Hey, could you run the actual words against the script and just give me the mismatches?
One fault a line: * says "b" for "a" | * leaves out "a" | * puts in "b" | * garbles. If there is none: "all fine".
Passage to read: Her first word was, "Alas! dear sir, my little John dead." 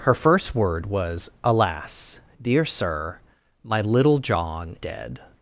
all fine